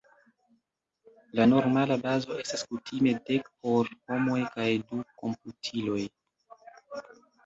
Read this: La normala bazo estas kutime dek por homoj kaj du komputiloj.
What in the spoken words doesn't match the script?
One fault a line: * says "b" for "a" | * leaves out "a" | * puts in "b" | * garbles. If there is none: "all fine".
all fine